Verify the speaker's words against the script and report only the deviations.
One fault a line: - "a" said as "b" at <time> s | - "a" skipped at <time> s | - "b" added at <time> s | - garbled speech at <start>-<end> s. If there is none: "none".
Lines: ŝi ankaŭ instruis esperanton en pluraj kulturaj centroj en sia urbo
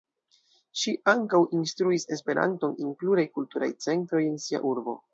none